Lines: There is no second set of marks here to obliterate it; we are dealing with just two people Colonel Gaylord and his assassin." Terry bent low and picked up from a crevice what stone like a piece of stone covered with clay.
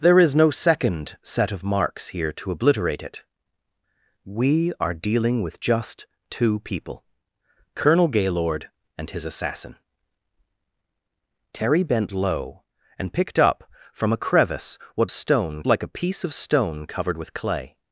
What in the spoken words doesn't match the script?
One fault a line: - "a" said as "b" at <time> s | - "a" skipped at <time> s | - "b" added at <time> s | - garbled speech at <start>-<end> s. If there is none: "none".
none